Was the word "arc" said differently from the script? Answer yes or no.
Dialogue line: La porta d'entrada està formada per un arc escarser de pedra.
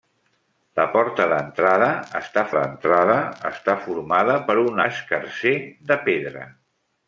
yes